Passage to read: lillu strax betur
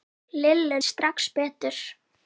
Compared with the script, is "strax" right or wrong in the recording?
right